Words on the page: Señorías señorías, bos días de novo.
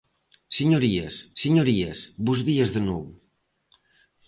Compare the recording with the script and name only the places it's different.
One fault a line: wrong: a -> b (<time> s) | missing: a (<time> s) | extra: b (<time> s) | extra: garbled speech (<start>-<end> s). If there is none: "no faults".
no faults